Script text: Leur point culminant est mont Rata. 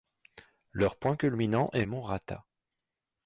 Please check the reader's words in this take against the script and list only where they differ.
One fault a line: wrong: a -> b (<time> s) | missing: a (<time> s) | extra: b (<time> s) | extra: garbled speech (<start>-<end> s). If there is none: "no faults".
no faults